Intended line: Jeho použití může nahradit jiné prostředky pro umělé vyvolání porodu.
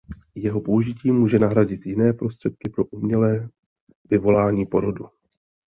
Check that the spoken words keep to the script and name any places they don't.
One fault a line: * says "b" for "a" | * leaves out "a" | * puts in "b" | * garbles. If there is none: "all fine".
all fine